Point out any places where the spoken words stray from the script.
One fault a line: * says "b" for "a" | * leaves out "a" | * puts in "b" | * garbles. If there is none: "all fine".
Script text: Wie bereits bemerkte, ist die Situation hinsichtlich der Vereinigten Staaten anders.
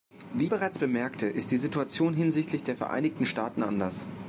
all fine